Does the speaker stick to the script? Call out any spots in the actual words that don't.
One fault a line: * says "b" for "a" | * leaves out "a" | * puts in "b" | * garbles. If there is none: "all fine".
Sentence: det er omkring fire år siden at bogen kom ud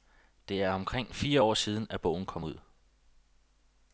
all fine